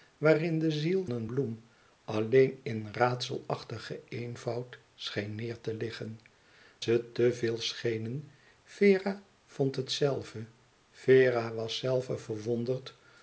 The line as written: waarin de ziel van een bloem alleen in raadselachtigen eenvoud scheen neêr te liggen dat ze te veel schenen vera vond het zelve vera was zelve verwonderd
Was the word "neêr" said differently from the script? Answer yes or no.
no